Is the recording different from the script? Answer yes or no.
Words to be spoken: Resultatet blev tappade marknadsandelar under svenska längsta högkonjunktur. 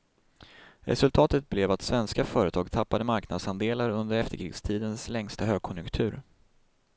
yes